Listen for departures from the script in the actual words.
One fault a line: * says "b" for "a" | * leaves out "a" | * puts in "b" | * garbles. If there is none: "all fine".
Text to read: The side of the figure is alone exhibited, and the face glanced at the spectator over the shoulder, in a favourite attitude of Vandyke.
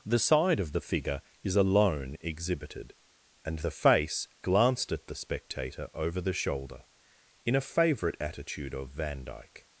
all fine